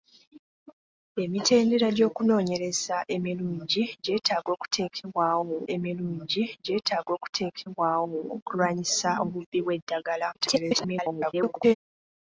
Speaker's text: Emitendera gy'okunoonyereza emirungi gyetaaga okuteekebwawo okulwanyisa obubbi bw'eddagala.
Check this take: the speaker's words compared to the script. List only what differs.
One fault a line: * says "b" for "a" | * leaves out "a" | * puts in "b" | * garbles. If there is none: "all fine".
* puts in "emirungi gyetaaga okuteekebwawo"
* garbles